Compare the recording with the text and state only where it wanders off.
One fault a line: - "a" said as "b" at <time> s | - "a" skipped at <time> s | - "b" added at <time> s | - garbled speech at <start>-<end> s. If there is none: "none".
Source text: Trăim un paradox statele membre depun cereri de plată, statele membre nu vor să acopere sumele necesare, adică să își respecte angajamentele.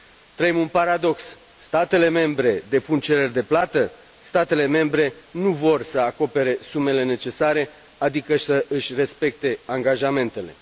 none